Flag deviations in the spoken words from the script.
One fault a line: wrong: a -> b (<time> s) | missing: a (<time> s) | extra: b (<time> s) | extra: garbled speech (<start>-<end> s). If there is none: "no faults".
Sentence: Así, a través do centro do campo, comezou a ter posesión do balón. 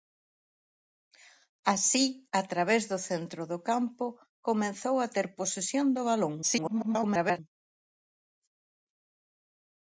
extra: garbled speech (6.4-7.4 s)